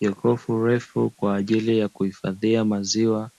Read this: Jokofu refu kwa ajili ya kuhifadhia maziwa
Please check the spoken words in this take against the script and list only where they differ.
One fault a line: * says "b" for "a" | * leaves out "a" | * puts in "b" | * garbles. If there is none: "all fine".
all fine